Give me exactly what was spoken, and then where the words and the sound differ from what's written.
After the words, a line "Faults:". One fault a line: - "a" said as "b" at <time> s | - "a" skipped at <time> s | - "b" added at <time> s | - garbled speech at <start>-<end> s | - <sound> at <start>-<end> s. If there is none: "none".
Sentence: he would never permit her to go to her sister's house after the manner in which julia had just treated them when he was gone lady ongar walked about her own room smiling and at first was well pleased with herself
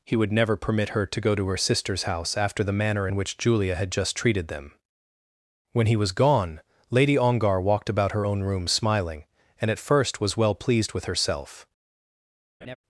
he would never permit her to go to her sister's house after the manner in which julia had just treated them when he was gone lady ongar walked about her own room smiling and at first was well pleased with herself
Faults:
- laugh at 12.6-12.8 s